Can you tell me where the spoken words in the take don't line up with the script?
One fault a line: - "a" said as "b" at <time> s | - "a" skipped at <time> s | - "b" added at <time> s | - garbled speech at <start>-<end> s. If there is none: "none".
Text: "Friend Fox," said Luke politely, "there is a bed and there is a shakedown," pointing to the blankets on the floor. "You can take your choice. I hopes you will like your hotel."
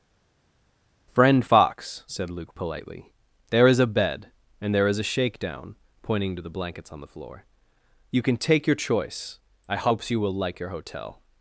none